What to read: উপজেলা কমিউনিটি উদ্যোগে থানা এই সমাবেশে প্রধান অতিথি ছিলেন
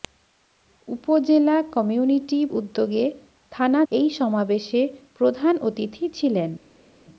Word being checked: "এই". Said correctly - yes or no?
yes